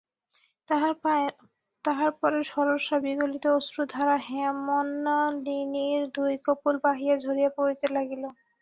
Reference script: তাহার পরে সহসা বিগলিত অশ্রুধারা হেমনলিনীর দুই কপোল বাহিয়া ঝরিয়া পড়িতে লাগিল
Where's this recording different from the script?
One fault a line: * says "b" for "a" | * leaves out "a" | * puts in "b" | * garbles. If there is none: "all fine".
all fine